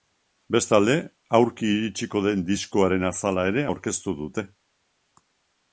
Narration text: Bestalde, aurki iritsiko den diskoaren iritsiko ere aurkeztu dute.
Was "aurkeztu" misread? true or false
false